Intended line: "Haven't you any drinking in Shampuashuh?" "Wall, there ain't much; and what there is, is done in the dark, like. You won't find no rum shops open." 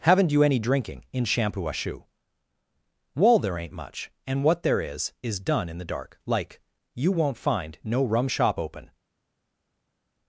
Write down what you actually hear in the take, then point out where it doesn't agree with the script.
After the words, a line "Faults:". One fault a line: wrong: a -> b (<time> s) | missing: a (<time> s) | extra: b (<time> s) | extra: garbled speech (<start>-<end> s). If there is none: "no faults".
"Haven't you any drinking in Shampuashuh?" "Wall, there ain't much; and what there is, is done in the dark, like. You won't find no rum shop open."
Faults:
wrong: shops -> shop (8.3 s)